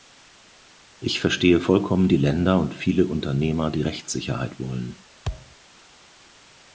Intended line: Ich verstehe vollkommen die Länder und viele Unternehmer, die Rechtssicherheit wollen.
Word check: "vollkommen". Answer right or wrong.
right